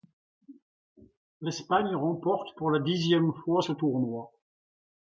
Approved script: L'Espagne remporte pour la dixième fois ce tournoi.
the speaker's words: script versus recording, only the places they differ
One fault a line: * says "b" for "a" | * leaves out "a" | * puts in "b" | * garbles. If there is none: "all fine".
all fine